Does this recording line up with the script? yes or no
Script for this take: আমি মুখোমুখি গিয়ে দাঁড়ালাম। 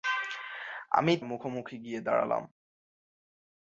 yes